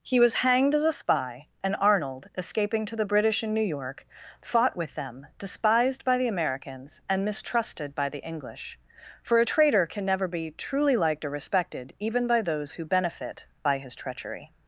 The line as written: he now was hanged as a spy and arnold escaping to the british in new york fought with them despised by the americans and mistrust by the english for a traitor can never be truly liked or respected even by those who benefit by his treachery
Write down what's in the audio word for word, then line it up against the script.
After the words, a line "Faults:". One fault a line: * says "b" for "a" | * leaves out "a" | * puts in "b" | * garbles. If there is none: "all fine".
he was hanged as a spy and arnold escaping to the british in new york fought with them despised by the americans and mistrusted by the english for a traitor can never be truly liked or respected even by those who benefit by his treachery
Faults:
* leaves out "now"
* says "mistrusted" for "mistrust"